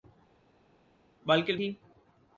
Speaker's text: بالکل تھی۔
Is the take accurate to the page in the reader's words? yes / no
yes